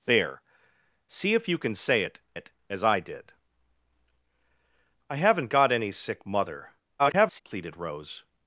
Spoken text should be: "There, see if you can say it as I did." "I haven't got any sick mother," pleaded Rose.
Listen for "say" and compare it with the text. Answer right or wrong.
right